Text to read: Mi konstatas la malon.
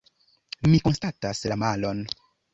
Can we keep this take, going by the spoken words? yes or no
yes